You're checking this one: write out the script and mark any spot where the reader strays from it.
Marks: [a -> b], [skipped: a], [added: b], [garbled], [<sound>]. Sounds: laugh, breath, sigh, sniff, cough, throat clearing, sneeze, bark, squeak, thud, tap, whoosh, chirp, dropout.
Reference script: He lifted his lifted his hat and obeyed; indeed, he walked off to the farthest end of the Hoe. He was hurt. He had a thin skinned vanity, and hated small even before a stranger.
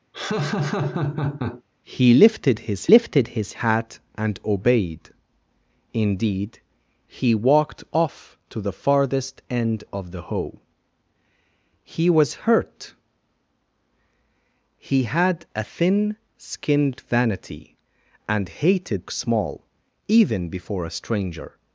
[laugh] He lifted his lifted his hat and obeyed; indeed, he walked off to the farthest end of the Hoe. He was hurt. He had a thin skinned vanity, and hated small even before a stranger.